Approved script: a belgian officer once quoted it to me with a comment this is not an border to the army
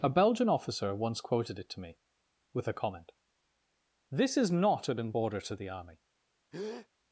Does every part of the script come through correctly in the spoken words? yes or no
yes